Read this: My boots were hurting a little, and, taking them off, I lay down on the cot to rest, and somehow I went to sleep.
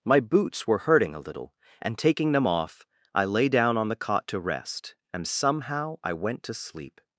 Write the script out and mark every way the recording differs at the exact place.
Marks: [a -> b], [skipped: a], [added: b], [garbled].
My boots were hurting a little, and, taking them off, I lay down on the cot to rest, and somehow I went to sleep.